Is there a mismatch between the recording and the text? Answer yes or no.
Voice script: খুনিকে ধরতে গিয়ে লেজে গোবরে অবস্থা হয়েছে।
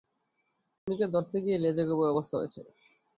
no